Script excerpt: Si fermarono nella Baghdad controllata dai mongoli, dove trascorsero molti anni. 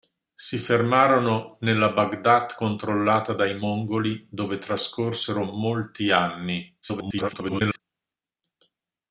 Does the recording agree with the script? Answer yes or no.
no